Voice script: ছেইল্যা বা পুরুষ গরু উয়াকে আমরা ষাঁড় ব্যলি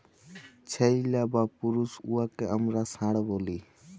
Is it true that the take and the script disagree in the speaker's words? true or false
true